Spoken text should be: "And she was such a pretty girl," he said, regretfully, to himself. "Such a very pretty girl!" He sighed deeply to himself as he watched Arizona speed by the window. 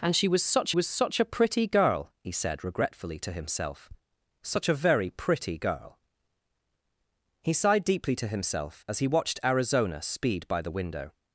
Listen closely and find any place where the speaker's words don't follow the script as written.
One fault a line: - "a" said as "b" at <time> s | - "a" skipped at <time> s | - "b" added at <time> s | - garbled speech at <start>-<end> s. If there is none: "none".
- "was such" added at 0.7 s